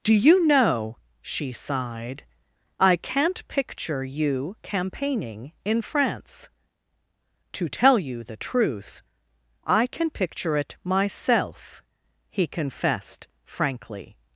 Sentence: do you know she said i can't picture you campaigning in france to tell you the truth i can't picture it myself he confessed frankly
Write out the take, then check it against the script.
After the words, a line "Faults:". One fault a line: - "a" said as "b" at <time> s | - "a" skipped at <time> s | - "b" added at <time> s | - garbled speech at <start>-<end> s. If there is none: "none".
do you know she sighed i can't picture you campaigning in france to tell you the truth i can picture it myself he confessed frankly
Faults:
- "said" said as "sighed" at 1.5 s
- "can't" said as "can" at 9.8 s